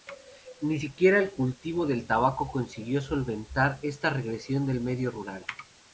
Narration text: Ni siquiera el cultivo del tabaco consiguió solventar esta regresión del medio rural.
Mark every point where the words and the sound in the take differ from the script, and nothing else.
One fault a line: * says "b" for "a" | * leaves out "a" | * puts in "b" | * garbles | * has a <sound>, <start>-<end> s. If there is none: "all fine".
all fine